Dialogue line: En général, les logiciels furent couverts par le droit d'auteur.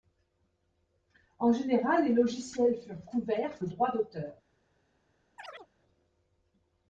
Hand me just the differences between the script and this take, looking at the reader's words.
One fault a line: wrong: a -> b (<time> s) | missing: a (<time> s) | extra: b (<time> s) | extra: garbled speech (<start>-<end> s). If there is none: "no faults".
missing: par (3.6 s)